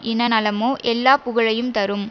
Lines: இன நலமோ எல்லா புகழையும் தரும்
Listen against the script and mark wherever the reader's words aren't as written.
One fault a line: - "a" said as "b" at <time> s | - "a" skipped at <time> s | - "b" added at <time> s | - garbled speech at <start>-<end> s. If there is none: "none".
none